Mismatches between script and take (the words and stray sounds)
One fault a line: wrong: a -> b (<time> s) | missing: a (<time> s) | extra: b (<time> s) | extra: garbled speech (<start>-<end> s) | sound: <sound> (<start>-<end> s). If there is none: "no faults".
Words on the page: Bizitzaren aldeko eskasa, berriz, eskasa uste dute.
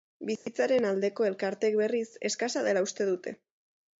sound: dropout (0.4-0.5 s)
wrong: eskasa -> elkarteek (1.3 s)
extra: dela (2.7 s)